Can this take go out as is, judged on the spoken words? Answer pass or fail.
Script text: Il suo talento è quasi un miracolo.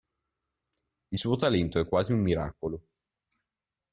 pass